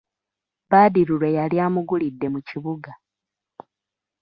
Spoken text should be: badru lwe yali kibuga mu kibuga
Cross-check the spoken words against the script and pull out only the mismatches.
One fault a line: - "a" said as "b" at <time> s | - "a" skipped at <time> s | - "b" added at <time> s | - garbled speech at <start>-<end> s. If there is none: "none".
- "kibuga" said as "amugulidde" at 1.6 s